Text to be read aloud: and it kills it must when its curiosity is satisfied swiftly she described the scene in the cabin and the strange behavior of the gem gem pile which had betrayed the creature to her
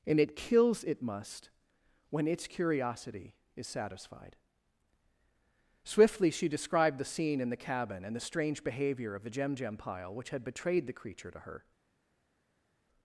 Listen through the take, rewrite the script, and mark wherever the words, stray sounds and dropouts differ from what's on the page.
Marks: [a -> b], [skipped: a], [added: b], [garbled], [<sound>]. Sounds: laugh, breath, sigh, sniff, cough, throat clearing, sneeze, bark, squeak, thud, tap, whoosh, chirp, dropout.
and it kills it must when its curiosity is satisfied swiftly she described the scene in the cabin and the strange behavior of the gem gem pile which had betrayed the creature to her